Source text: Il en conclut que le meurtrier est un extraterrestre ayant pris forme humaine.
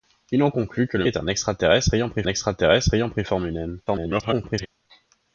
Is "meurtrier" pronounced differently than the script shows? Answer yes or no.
yes